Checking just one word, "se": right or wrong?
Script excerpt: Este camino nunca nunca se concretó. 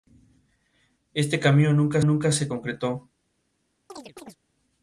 right